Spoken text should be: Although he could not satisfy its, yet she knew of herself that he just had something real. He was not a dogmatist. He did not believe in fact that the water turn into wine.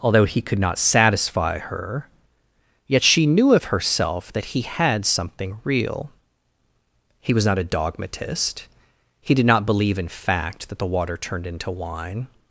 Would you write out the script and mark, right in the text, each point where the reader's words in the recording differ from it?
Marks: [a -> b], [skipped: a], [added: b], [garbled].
Although he could not satisfy [its, -> her] yet she knew of herself that he [skipped: just] had something real. He was not a dogmatist. He did not believe in fact that the water [turn -> turned] into wine.